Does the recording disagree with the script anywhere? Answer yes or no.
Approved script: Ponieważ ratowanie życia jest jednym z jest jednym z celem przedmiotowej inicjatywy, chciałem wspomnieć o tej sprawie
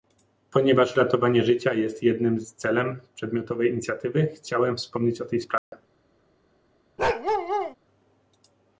yes